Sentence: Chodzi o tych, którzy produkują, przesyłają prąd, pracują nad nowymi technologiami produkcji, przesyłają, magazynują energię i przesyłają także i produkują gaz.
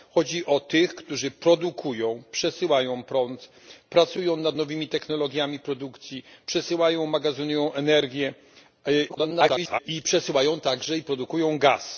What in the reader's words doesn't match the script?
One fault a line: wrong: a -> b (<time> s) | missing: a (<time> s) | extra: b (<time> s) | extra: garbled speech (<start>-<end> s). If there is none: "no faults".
extra: garbled speech (9.1-9.8 s)